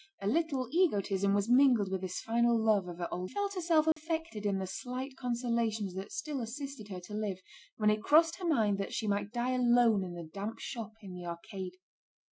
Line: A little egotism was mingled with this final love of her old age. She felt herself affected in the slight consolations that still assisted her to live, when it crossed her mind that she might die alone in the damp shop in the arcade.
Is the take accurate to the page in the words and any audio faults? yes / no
no